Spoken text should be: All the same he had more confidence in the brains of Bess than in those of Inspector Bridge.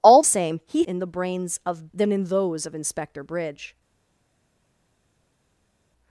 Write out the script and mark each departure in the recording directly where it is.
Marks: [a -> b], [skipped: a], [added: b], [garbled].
All [skipped: the] same he [skipped: had more confidence] in the brains of [skipped: Bess] than in those of Inspector Bridge.